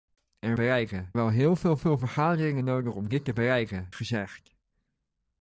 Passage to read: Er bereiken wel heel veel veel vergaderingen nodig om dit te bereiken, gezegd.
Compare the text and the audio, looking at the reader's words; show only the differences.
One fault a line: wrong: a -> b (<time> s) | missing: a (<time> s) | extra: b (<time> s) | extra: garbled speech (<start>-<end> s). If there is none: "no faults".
no faults